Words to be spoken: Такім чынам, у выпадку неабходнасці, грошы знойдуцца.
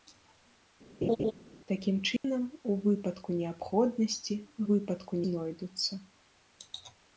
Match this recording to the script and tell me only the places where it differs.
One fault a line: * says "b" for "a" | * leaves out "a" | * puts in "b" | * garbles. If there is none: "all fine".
* says "выпадку" for "грошы"